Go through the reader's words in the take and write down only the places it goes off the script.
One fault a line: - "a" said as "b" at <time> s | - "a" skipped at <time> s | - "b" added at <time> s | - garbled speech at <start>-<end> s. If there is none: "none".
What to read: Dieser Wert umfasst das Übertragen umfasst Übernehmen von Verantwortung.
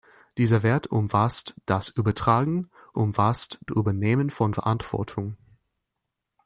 none